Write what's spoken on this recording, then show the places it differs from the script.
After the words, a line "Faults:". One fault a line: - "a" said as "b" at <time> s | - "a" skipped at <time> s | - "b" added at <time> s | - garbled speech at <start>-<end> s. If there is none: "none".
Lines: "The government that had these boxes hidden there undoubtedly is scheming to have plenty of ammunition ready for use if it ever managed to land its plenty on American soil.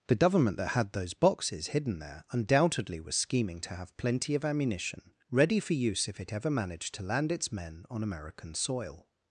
"The government that had those boxes hidden there undoubtedly was scheming to have plenty of ammunition ready for use if it ever managed to land its men on American soil.
Faults:
- "these" said as "those" at 0.9 s
- "is" said as "was" at 3.0 s
- "plenty" said as "men" at 7.5 s